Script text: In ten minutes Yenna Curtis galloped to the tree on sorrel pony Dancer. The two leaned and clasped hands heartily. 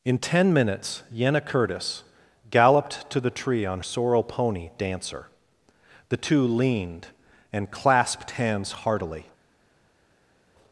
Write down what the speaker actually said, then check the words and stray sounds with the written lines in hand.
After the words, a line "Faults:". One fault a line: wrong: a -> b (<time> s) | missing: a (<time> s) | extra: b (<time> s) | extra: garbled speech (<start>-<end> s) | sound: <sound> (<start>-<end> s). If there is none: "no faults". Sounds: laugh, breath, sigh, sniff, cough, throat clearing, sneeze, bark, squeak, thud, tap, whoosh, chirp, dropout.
In ten minutes Yenna Curtis galloped to the tree on sorrel pony Dancer. The two leaned and clasped hands heartily.
Faults:
no faults